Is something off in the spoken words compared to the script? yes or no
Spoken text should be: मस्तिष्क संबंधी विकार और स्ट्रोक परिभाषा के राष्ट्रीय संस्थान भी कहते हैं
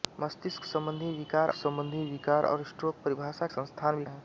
yes